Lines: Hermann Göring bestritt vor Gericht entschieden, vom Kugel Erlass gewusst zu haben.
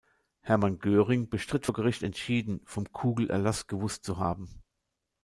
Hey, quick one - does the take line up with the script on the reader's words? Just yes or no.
yes